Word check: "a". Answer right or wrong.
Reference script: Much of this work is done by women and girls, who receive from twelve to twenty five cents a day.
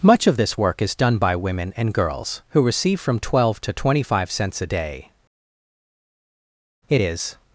right